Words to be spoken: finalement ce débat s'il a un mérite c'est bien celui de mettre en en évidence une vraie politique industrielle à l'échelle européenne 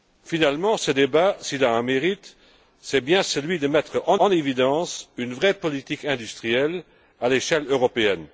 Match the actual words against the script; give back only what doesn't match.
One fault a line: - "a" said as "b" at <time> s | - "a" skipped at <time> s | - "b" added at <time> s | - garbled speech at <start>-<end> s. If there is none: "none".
none